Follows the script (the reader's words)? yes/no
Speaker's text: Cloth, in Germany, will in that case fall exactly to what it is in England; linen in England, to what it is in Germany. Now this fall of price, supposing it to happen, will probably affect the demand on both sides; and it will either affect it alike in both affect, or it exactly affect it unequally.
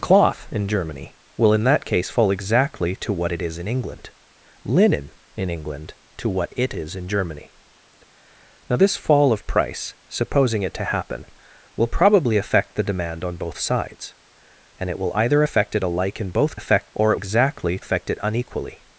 yes